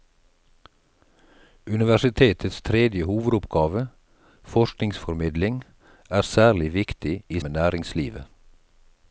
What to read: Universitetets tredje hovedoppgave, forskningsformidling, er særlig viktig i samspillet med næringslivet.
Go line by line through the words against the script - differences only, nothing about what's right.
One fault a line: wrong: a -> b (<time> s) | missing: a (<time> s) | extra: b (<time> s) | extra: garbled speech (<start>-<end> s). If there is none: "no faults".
missing: samspillet (7.4 s)